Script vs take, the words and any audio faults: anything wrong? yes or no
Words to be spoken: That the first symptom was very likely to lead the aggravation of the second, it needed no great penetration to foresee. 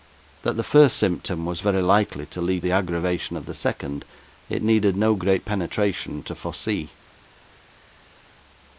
no